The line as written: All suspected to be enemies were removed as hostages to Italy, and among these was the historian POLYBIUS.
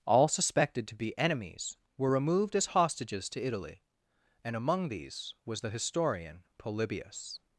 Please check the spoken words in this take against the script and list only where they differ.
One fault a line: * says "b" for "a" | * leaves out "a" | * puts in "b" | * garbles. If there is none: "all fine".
all fine